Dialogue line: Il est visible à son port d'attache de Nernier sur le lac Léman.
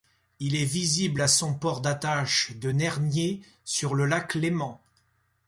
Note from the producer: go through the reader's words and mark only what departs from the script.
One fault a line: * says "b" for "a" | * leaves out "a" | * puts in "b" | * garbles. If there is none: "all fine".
all fine